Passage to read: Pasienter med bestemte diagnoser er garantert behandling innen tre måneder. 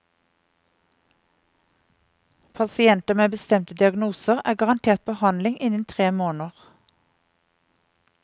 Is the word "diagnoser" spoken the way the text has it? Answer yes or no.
yes